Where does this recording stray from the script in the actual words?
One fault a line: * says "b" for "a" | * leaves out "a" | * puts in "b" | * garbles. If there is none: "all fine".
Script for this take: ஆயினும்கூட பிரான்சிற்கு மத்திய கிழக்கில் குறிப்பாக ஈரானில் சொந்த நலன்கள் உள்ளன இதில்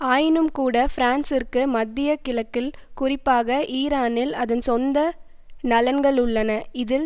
* puts in "அதன்"